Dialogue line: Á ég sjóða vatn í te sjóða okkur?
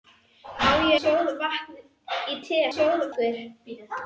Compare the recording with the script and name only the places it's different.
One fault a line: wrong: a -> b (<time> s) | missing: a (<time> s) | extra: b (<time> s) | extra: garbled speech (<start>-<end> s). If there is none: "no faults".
no faults